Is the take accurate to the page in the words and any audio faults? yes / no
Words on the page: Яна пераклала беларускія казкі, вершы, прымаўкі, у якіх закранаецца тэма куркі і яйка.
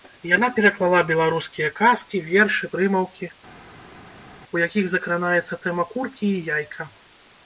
yes